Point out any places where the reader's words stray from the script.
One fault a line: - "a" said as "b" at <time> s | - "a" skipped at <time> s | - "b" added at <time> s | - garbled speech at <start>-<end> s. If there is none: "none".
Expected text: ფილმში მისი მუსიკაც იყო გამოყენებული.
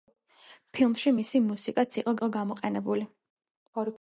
- "იყო" added at 2.2 s